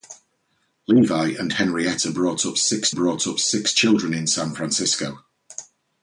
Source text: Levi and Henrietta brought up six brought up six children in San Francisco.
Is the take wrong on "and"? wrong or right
right